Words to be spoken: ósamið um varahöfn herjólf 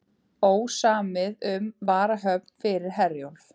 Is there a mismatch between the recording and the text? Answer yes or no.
yes